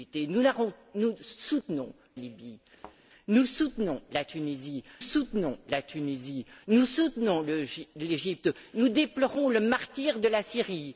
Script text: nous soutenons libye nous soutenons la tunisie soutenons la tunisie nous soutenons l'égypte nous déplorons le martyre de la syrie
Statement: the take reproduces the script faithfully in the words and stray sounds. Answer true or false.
false